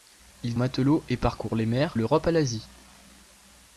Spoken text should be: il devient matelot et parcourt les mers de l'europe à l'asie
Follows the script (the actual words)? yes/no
no